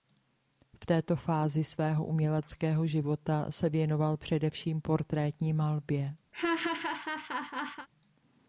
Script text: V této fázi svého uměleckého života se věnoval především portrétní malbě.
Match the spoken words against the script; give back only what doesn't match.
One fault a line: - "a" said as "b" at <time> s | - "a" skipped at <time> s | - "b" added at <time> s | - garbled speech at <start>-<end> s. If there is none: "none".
none